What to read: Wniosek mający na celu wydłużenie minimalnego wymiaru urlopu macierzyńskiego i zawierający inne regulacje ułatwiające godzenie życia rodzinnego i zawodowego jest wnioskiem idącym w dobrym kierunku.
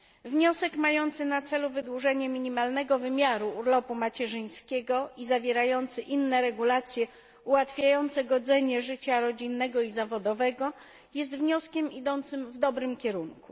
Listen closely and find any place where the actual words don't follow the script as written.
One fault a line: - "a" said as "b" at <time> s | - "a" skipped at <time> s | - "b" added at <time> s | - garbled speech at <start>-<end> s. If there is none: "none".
none